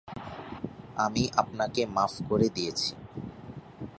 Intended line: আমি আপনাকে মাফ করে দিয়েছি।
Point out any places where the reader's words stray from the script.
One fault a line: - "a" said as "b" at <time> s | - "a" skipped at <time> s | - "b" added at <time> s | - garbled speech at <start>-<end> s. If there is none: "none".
none